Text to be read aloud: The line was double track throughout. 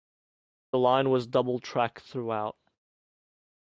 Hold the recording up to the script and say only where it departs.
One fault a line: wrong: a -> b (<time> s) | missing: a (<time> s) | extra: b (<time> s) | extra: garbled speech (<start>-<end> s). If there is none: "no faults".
no faults